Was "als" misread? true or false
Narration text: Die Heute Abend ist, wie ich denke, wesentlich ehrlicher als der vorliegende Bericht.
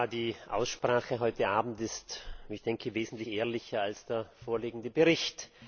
false